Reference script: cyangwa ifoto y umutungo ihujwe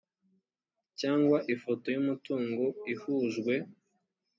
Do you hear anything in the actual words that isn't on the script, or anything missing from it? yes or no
no